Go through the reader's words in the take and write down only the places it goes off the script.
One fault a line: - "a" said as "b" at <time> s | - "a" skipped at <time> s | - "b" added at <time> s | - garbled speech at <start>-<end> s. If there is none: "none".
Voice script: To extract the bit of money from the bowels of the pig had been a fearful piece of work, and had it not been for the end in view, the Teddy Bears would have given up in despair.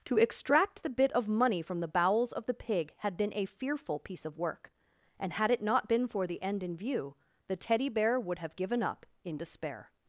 - "Bears" said as "Bear" at 7.9 s